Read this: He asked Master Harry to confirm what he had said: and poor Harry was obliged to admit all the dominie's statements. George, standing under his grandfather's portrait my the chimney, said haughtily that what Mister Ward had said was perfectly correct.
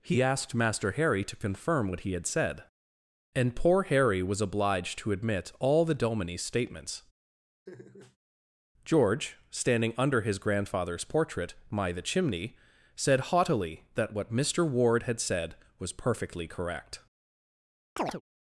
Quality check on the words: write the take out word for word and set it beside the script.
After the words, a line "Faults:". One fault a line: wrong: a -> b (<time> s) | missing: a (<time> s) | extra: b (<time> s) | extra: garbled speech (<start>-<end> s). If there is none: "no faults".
He asked Master Harry to confirm what he had said: and poor Harry was obliged to admit all the dominie's statements. George, standing under his grandfather's portrait my the chimney, said haughtily that what Mister Ward had said was perfectly correct.
Faults:
no faults